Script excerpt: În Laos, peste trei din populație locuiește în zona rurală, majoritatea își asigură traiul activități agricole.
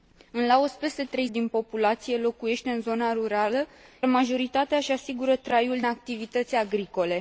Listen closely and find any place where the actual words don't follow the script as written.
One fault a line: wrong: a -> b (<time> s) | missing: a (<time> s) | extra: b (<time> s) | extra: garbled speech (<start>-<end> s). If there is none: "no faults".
no faults